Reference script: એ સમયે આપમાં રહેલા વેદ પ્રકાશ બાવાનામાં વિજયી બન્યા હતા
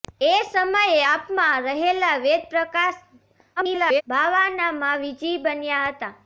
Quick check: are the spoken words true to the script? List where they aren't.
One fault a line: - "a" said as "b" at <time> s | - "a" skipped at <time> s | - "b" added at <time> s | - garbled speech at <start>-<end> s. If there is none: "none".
- garbled speech at 3.6-4.0 s